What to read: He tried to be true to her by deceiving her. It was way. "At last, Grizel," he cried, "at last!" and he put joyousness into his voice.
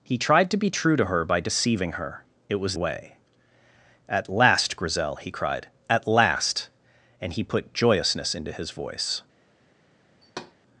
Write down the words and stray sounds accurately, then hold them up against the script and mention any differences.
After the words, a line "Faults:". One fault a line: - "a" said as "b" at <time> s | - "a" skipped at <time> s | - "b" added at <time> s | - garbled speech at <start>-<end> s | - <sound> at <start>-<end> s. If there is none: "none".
He tried to be true to her by deceiving her. It was way. "At last, Grizel," he cried, "at last!" and he put joyousness into his voice.
Faults:
- thud at 10.2-10.6 s